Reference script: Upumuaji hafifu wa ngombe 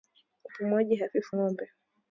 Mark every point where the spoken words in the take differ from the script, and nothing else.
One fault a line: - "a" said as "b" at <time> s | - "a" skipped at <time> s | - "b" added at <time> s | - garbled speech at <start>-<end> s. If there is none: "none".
- "wa" skipped at 1.4 s